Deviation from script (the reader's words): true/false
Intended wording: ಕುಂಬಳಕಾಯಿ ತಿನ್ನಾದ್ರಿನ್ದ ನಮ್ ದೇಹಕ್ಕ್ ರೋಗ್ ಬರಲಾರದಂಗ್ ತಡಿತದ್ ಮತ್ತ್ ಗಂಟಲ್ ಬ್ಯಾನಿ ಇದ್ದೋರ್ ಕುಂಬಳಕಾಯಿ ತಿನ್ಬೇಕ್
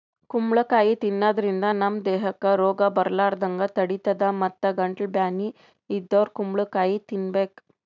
false